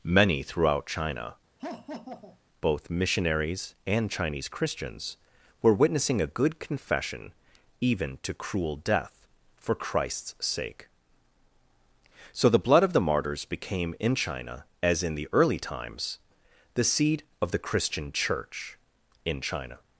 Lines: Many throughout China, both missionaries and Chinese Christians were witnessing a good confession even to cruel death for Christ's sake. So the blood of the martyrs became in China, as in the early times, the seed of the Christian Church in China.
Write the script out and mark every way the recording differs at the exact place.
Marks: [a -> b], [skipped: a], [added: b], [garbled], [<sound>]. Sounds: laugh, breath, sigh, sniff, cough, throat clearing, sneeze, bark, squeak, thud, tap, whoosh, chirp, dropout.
Many throughout China, [laugh] both missionaries and Chinese Christians were witnessing a good confession even to cruel death for Christ's sake. So the blood of the martyrs became in China, as in the early times, the seed of the Christian Church in China.